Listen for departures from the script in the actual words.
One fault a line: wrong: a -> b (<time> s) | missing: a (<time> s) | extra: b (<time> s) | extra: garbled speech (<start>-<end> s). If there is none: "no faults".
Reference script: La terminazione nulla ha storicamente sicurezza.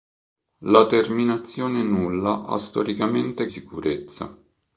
no faults